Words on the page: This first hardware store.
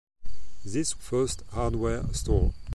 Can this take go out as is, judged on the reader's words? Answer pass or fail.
pass